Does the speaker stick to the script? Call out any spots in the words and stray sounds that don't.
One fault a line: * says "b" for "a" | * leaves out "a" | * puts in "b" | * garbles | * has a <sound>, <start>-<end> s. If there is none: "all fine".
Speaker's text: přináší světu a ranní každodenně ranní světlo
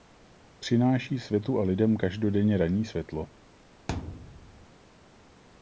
* says "lidem" for "ranní"
* has a thud, 3.9-4.7 s